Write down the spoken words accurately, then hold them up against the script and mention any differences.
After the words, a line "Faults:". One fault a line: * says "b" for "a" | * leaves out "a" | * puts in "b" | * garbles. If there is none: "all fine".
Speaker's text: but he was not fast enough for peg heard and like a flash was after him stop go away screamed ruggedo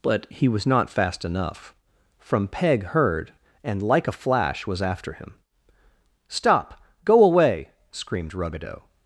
but he was not fast enough from peg heard and like a flash was after him stop go away screamed ruggedo
Faults:
* says "from" for "for"